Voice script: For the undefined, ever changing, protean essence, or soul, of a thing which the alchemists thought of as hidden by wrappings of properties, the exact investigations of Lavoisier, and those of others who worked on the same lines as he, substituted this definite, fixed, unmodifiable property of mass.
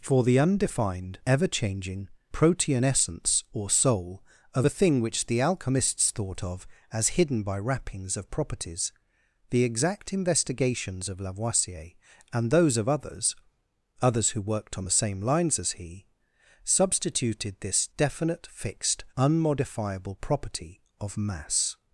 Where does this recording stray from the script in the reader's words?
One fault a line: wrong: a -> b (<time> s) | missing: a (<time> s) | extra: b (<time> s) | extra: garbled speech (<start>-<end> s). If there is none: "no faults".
extra: others (14.0 s)